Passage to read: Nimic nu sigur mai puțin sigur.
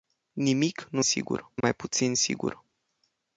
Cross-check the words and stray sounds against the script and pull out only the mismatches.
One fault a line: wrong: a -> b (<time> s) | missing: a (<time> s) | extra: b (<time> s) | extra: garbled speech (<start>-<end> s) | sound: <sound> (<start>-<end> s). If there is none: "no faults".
sound: dropout (1.6-1.6 s)